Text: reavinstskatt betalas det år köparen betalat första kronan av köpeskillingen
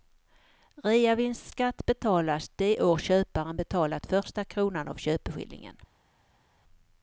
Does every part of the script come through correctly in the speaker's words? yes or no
yes